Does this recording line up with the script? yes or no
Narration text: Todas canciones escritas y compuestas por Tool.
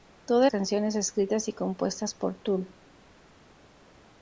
yes